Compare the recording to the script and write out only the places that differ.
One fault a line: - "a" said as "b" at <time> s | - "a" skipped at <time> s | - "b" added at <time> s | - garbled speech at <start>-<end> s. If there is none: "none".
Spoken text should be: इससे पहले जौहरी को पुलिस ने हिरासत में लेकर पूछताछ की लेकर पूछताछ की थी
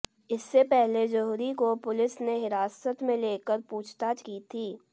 - "लेकर पूछताछ की" skipped at 4.4 s